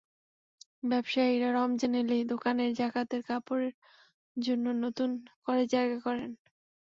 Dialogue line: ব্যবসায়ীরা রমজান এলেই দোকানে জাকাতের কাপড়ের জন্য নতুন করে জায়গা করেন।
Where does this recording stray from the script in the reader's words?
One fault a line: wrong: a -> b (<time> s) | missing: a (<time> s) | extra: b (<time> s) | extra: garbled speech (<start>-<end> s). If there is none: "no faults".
no faults